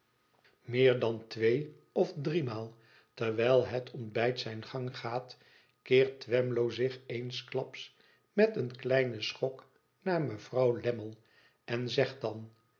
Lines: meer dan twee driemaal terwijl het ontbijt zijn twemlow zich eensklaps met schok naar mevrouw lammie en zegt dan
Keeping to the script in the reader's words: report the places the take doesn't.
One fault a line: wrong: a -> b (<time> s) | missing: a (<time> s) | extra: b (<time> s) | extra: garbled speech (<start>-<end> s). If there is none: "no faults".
extra: of (1.9 s)
extra: gang gaat keert (4.6 s)
extra: een kleinen (8.6 s)